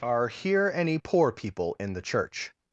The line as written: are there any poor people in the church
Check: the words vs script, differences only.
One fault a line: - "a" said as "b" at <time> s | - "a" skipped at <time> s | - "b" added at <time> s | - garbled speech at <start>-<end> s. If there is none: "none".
- "there" said as "here" at 0.3 s